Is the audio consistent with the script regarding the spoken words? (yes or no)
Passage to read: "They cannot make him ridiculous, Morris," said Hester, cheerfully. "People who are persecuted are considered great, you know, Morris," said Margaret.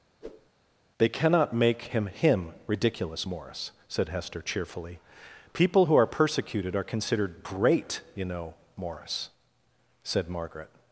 no